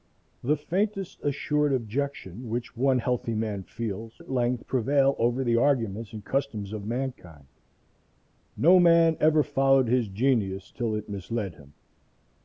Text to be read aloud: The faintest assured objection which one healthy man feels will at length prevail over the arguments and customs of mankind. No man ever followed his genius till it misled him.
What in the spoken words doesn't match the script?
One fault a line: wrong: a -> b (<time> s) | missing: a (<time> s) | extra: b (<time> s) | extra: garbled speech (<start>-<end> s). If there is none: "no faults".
missing: will (4.2 s)